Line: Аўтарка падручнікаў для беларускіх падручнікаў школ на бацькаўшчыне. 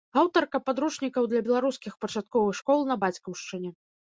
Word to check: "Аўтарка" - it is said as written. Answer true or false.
true